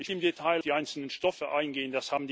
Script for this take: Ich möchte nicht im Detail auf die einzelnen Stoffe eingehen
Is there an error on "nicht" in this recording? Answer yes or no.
yes